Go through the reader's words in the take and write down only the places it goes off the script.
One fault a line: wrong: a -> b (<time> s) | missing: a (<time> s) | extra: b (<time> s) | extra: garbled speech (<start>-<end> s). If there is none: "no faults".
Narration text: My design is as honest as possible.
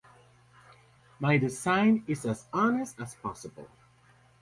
no faults